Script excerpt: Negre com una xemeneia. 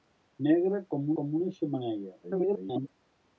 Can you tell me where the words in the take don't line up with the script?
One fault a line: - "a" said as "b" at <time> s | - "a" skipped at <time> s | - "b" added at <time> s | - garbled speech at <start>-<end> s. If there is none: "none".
- "com" added at 1.2 s
- garbled speech at 2.2-2.9 s